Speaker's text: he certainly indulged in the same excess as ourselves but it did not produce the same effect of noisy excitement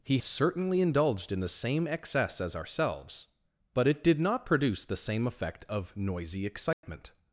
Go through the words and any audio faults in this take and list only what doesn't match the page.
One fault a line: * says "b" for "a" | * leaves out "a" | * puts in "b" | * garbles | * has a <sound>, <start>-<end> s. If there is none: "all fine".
* has a dropout, 6.7-6.8 s